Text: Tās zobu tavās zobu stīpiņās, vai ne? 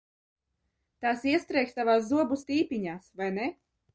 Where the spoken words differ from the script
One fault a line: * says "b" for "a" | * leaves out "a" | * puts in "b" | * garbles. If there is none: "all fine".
* says "iestrēgs" for "zobu"